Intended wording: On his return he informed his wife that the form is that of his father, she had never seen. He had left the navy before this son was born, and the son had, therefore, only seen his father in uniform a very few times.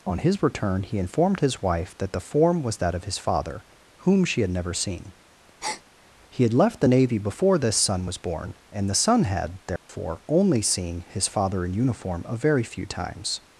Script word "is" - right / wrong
wrong